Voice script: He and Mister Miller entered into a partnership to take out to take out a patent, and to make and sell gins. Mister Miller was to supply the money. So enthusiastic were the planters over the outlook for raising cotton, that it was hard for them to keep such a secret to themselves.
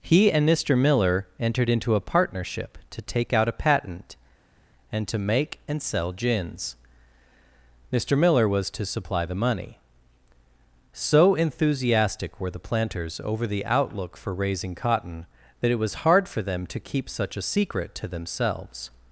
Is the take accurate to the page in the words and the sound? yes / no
no